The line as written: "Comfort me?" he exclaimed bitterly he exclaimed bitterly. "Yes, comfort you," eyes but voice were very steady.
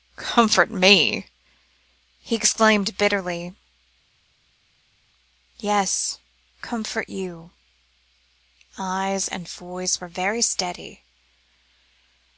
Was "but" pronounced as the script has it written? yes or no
no